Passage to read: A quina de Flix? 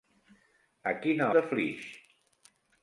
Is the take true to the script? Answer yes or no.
yes